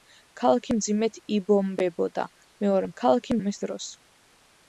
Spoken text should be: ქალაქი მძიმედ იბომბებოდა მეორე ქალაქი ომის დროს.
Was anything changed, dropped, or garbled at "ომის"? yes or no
no